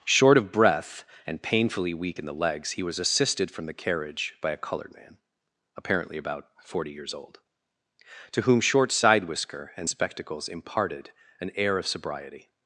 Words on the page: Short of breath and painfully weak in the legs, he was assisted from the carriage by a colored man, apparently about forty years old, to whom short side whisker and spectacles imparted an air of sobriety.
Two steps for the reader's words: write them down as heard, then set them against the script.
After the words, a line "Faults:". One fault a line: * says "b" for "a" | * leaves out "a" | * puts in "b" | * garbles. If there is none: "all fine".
Short of breath and painfully weak in the legs, he was assisted from the carriage by a colored man, apparently about forty years old, to whom short side whisker and spectacles imparted an air of sobriety.
Faults:
all fine